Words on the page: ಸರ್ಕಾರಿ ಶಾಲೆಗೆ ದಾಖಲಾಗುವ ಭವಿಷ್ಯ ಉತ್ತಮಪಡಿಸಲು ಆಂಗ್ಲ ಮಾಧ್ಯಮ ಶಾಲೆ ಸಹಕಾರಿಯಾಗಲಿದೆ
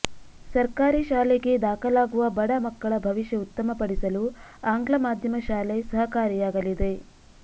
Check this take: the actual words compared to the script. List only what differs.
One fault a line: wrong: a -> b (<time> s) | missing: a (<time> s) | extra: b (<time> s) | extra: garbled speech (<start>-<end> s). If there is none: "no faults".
extra: ಬಡ ಮಕ್ಕಳ (2.4 s)